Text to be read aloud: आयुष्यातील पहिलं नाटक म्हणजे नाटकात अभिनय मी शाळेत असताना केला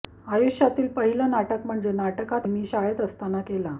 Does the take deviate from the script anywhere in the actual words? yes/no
yes